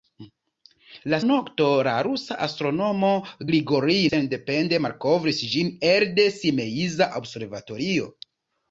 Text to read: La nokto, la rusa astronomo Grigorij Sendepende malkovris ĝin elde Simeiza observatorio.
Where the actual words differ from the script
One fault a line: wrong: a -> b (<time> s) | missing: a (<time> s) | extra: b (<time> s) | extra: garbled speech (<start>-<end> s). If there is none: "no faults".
no faults